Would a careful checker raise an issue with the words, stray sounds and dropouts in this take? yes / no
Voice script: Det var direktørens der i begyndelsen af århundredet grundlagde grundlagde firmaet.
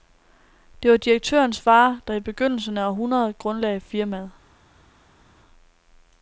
yes